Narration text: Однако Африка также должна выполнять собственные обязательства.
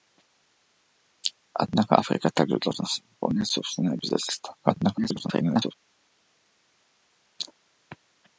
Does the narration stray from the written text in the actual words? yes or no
yes